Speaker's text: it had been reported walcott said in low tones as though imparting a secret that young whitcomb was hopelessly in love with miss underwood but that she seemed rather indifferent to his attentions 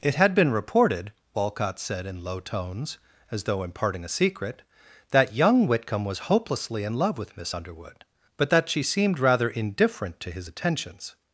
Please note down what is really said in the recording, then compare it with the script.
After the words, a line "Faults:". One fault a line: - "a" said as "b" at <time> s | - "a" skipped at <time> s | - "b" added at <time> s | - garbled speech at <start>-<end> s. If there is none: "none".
it had been reported walcott said in low tones as though imparting a secret that young whitcomb was hopelessly in love with miss underwood but that she seemed rather indifferent to his attentions
Faults:
none